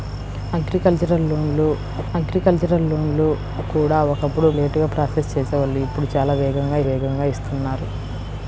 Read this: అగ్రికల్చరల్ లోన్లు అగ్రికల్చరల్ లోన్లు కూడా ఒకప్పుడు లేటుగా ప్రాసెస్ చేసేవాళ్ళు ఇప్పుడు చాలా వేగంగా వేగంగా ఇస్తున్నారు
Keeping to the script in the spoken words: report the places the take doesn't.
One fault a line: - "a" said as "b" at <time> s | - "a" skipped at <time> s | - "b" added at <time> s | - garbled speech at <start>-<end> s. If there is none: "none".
none